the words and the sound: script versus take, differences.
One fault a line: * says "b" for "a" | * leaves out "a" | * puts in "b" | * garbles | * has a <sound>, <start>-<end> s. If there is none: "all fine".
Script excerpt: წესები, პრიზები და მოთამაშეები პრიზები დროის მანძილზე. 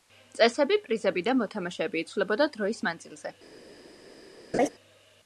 * says "იცვლებოდა" for "პრიზები"
* has a laugh, 4.5-4.7 s